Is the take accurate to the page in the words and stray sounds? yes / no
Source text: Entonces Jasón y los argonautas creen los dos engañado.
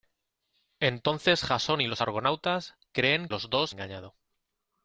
yes